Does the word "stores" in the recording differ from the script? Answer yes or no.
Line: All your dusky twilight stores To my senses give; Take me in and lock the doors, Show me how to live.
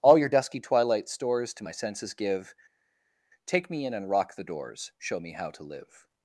no